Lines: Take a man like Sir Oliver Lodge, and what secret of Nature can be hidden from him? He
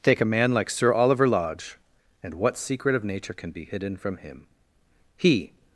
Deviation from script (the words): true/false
false